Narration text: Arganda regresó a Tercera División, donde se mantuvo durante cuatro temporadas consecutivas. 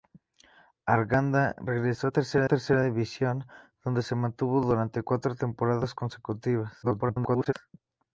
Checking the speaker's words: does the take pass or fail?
fail